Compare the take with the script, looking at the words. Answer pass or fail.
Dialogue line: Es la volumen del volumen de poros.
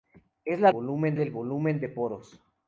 pass